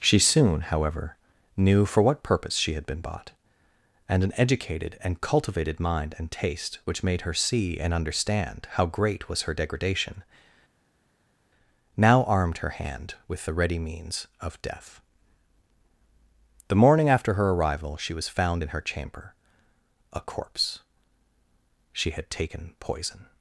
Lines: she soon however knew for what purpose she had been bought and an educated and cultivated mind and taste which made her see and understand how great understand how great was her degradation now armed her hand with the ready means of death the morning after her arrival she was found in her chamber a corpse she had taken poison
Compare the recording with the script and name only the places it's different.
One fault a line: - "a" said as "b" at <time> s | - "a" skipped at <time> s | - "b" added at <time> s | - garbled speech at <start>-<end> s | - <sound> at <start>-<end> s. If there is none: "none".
- "understand how great" skipped at 9.3 s